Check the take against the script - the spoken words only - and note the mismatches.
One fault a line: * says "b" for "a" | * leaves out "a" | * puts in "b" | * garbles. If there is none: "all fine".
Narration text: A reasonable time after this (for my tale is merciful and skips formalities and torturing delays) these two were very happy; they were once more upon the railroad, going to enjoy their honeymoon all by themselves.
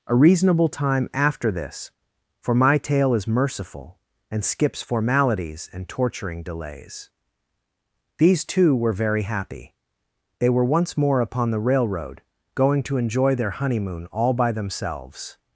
all fine